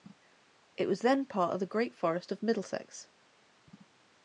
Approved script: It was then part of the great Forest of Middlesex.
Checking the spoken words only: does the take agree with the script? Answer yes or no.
yes